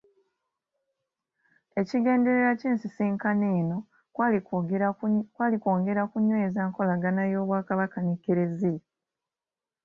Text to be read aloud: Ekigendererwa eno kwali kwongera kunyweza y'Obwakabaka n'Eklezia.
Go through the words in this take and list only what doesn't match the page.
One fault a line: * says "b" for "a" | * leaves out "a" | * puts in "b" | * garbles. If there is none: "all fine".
* puts in "ky'ensisinkano"
* puts in "nkolagana"